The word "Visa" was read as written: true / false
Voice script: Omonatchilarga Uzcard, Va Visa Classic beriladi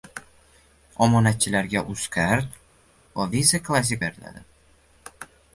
true